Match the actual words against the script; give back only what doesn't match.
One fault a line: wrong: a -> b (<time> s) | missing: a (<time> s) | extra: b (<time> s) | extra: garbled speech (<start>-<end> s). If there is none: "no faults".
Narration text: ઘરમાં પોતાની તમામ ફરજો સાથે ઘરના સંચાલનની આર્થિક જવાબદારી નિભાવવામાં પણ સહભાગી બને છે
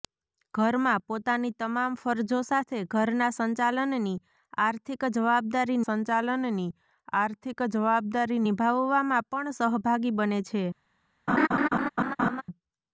extra: સંચાલનની આર્થિક જવાબદારી (5.8 s)